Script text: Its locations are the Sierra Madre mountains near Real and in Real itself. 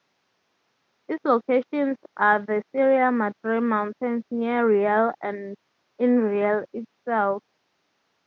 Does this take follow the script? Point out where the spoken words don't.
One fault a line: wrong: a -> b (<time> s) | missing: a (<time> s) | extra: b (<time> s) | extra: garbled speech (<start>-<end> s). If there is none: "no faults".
no faults